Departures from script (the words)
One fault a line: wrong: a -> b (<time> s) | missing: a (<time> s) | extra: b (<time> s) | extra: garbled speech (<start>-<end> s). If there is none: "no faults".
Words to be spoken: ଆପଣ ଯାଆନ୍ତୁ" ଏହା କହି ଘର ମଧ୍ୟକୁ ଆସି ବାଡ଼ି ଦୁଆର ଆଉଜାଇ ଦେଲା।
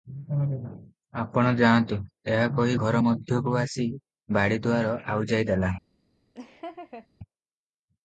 no faults